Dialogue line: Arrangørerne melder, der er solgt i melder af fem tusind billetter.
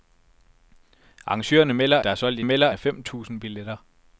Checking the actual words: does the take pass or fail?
pass